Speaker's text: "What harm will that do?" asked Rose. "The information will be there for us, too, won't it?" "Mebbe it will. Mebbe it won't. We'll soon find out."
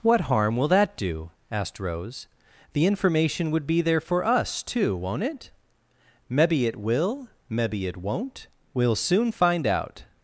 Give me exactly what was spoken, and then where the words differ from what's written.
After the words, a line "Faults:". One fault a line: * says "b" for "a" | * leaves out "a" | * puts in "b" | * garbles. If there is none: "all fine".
"What harm will that do?" asked Rose. "The information would be there for us, too, won't it?" "Mebbe it will. Mebbe it won't. We'll soon find out."
Faults:
* says "would" for "will"